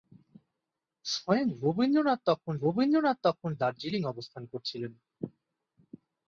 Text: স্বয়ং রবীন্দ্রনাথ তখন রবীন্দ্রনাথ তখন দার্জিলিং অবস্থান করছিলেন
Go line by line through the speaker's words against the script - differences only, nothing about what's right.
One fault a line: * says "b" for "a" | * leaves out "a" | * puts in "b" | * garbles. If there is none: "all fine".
all fine